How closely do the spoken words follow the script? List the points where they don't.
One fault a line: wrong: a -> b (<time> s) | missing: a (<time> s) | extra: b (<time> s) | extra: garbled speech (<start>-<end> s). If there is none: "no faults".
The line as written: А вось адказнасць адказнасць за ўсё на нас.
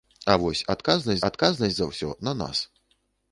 no faults